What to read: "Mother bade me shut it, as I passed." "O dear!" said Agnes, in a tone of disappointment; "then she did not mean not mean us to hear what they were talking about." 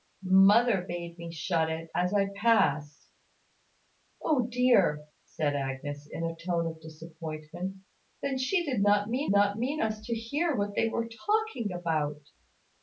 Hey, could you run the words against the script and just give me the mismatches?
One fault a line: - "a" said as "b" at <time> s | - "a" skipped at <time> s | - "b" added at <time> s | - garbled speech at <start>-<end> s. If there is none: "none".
none